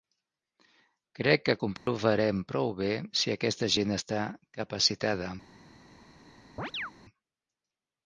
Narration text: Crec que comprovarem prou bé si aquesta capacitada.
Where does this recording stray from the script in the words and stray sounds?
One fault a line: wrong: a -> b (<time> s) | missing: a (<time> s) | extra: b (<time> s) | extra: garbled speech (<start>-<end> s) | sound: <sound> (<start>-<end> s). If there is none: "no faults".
sound: dropout (1.8-1.9 s)
extra: gent està (3.8 s)
sound: chirp (6.6-6.9 s)